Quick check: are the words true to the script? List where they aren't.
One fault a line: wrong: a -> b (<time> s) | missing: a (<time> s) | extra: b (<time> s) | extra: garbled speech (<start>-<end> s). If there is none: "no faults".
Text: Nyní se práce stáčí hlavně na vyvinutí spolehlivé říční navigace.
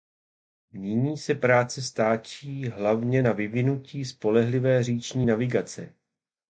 no faults